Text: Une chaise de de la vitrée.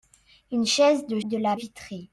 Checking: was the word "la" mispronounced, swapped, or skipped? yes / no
no